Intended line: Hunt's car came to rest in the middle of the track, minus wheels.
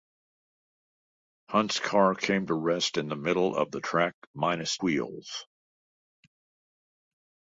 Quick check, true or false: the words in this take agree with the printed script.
true